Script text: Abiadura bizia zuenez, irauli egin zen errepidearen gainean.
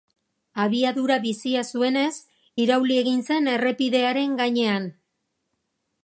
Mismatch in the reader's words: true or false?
false